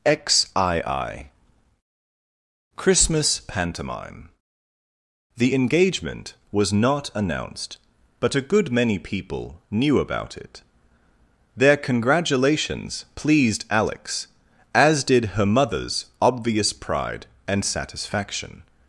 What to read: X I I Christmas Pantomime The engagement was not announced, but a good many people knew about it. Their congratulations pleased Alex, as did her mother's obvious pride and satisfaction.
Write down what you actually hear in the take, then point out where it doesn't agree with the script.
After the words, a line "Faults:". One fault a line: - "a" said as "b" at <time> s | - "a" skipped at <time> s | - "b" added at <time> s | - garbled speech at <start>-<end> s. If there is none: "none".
X I I Christmas Pantomime The engagement was not announced, but a good many people knew about it. Their congratulations pleased Alex, as did her mother's obvious pride and satisfaction.
Faults:
none